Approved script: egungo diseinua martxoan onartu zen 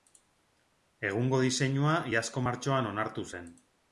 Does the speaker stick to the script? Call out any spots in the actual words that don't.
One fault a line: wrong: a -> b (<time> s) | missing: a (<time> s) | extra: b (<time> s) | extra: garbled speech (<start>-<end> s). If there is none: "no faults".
extra: iazko (2.1 s)